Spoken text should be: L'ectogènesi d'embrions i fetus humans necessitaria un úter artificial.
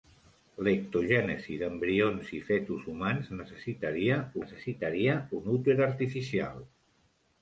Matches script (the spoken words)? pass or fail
fail